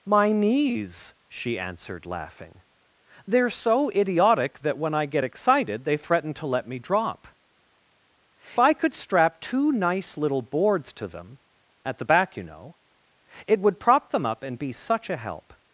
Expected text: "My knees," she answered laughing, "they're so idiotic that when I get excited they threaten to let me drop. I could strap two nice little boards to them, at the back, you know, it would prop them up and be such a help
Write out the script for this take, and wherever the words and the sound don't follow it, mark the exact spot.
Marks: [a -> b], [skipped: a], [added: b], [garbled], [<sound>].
"My knees," she answered laughing, "they're so idiotic that when I get excited they threaten to let me drop. I could strap two nice little boards to them, at the back, you know, it would prop them up and be such a help